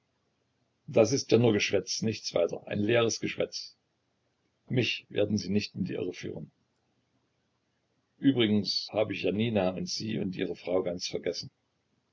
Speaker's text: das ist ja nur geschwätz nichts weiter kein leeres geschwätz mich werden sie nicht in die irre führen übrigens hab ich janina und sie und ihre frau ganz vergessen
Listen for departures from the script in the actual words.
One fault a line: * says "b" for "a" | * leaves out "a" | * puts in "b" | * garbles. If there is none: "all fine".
* says "ein" for "kein"